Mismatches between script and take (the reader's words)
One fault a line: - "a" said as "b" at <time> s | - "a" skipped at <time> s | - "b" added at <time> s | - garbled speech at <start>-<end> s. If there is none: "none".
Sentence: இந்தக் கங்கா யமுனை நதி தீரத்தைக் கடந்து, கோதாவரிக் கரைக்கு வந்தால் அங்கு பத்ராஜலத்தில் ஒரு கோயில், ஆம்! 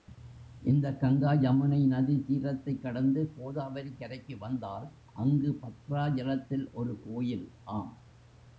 none